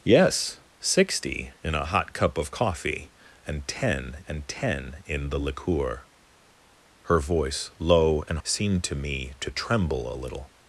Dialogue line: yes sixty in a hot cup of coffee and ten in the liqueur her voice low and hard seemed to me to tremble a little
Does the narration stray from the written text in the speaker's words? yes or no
yes